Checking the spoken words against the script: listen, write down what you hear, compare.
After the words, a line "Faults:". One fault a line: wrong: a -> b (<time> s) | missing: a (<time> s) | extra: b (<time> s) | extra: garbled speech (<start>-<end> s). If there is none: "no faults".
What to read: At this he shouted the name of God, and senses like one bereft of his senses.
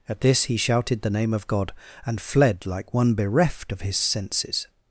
At this he shouted the name of God, and fled like one bereft of his senses.
Faults:
wrong: senses -> fled (2.2 s)